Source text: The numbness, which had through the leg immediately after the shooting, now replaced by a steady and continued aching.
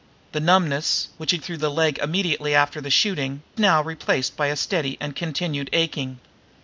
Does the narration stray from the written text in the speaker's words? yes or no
no